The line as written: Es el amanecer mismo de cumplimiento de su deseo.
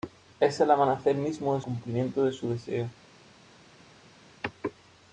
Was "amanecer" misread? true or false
false